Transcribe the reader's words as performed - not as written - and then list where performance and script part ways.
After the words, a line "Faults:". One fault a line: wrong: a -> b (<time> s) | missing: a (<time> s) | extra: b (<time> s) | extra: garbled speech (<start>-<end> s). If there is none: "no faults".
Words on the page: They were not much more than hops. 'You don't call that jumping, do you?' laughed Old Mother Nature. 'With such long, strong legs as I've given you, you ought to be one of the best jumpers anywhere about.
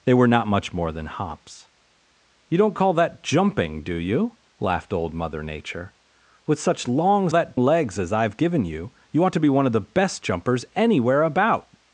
They were not much more than hops. 'You don't call that jumping, do you?' laughed Old Mother Nature. 'With such long, that legs as I've given you, you ought to be one of the best jumpers anywhere about.
Faults:
wrong: strong -> that (7.3 s)